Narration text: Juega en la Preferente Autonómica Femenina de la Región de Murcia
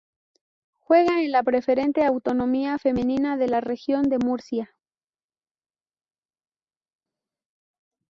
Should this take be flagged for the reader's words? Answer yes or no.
no